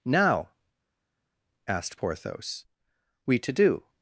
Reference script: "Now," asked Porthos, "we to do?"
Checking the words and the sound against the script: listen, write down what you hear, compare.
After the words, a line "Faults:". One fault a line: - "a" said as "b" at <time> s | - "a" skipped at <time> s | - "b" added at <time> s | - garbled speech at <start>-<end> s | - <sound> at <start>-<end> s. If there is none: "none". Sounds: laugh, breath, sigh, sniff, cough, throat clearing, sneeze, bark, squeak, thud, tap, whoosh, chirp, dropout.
"Now," asked Porthos, "we to do?"
Faults:
none